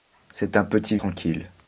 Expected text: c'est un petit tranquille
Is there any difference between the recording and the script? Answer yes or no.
no